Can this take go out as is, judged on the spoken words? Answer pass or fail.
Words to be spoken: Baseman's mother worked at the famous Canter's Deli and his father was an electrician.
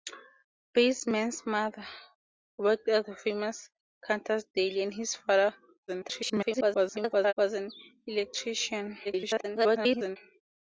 fail